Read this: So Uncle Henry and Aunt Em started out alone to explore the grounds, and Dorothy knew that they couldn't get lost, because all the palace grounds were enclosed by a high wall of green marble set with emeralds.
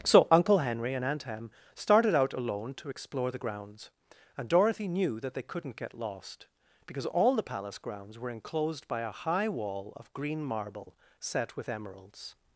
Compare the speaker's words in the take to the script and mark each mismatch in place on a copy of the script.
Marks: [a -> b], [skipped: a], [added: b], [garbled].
So Uncle Henry and Aunt Em started out alone to explore the grounds, and Dorothy knew that they couldn't get lost, because all the palace grounds were enclosed by a high wall of green marble set with emeralds.